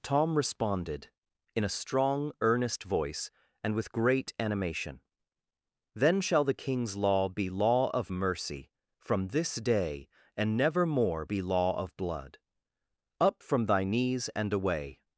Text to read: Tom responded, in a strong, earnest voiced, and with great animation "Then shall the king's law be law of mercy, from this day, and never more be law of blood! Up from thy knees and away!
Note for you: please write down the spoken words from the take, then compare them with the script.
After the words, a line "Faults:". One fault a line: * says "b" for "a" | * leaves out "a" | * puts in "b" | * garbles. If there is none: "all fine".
Tom responded, in a strong, earnest voice, and with great animation "Then shall the king's law be law of mercy, from this day, and never more be law of blood! Up from thy knees and away!
Faults:
* says "voice" for "voiced"